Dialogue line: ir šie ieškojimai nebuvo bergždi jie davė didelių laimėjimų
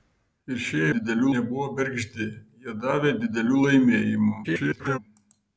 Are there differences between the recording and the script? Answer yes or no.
yes